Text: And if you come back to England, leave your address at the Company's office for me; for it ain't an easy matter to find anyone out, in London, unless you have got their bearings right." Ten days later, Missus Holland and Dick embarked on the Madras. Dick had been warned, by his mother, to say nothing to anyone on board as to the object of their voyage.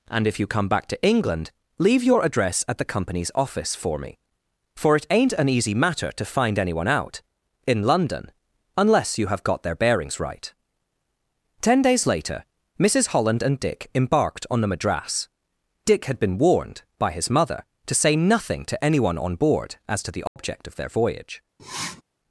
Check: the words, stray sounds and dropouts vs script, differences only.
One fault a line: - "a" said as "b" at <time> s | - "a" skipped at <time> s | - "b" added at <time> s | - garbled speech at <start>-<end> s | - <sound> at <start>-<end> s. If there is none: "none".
- dropout at 20.3-20.4 s
- sniff at 21.6-22.0 s